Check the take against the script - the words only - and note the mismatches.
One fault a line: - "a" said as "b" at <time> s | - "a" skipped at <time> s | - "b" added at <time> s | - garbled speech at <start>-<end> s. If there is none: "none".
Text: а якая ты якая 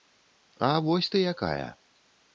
- "якая" said as "вось" at 0.8 s